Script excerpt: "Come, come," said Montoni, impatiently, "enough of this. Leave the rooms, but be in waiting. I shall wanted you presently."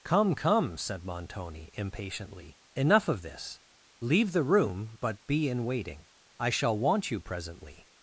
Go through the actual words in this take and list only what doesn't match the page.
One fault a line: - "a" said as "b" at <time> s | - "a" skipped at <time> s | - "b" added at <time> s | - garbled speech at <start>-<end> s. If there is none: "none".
- "rooms" said as "room" at 4.4 s
- "wanted" said as "want" at 6.8 s